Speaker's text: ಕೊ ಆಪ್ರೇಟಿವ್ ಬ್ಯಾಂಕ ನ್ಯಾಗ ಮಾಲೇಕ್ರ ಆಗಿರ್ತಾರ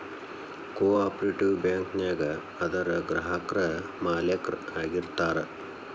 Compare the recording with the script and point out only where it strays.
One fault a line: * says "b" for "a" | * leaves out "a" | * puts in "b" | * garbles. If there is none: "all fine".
* puts in "ಅದರ್ ಗ್ರಾಹಕ್ರ"